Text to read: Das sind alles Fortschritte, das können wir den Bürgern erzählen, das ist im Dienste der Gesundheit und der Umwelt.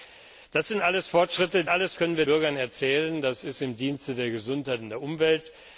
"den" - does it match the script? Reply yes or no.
no